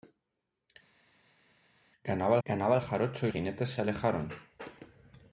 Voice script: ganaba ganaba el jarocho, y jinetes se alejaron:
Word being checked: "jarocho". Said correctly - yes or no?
yes